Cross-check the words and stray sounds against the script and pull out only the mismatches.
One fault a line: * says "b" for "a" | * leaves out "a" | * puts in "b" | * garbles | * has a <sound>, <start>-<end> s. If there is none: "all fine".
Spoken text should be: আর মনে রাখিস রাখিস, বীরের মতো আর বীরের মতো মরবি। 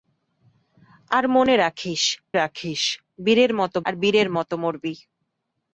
all fine